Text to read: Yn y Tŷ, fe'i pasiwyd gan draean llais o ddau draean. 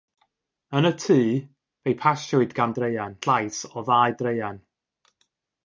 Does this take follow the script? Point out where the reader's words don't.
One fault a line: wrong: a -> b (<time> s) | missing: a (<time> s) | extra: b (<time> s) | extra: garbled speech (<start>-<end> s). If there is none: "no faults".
no faults